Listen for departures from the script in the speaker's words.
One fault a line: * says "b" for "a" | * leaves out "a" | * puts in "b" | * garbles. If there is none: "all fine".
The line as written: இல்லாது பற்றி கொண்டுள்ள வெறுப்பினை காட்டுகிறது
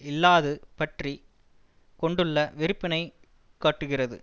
all fine